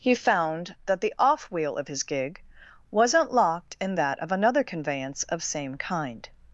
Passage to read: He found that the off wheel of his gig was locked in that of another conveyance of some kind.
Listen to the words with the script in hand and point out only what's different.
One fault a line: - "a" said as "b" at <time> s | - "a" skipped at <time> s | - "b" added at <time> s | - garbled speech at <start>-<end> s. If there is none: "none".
- "was" said as "wasn't" at 2.9 s
- "some" said as "same" at 5.4 s